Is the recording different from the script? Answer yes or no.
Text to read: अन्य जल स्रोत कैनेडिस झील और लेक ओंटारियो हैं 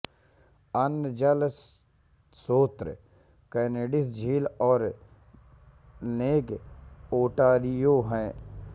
no